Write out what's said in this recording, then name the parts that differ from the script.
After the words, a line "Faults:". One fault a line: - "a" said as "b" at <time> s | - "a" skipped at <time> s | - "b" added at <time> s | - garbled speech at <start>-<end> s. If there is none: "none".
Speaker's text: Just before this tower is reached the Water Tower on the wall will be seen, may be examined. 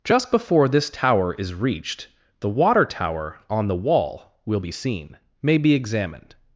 Just before this tower is reached the Water Tower on the wall will be seen, may be examined.
Faults:
none